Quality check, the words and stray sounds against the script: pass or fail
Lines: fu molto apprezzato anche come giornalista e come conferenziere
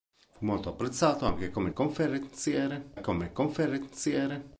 fail